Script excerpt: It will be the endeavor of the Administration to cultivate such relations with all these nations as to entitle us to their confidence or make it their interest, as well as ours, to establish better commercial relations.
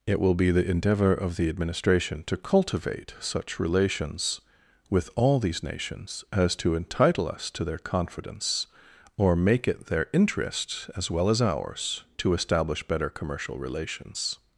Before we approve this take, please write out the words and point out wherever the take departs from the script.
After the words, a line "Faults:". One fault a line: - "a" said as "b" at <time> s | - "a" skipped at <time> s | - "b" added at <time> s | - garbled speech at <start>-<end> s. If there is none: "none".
It will be the endeavor of the Administration to cultivate such relations with all these nations as to entitle us to their confidence or make it their interest, as well as ours, to establish better commercial relations.
Faults:
none